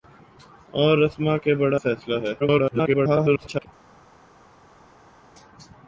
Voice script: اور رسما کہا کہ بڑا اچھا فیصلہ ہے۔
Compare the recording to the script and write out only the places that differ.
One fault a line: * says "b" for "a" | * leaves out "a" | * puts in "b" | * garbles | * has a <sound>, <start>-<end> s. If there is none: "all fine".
* leaves out "کہا"
* leaves out "اچھا"
* garbles